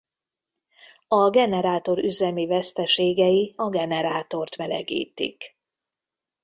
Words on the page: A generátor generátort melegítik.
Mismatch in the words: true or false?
true